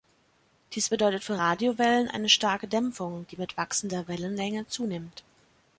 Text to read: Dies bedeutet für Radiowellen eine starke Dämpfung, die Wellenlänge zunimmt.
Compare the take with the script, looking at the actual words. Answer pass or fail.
fail